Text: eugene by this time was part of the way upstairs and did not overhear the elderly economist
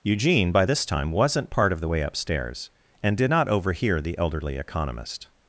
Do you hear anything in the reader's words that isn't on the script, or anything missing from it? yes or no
yes